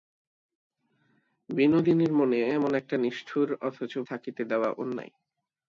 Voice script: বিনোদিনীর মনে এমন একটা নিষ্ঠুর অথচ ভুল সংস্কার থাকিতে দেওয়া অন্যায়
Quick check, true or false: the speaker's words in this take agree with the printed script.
false